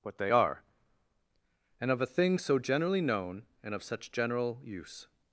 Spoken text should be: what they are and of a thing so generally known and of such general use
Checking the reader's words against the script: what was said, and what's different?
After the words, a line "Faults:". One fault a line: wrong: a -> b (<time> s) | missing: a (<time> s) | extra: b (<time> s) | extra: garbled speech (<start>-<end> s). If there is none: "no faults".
what they are and of a thing so generally known and of such general use
Faults:
no faults